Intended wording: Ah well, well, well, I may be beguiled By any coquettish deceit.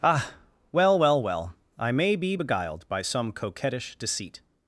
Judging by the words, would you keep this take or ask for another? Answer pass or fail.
fail